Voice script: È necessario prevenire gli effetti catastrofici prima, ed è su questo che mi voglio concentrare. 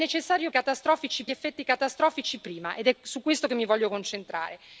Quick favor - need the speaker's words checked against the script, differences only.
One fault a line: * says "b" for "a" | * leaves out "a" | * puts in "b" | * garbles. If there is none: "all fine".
* says "catastrofici" for "prevenire"